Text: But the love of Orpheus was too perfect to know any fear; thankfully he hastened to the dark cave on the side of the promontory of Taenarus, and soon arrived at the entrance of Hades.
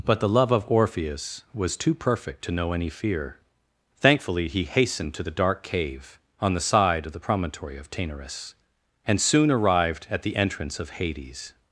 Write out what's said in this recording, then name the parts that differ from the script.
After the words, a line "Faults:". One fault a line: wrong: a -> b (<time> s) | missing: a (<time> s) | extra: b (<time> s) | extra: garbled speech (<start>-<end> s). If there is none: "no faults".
But the love of Orpheus was too perfect to know any fear; thankfully he hastened to the dark cave on the side of the promontory of Taenarus, and soon arrived at the entrance of Hades.
Faults:
no faults